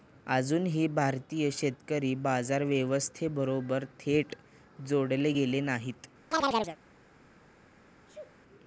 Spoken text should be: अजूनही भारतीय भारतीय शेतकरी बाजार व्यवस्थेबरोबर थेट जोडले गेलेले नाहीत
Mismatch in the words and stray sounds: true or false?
true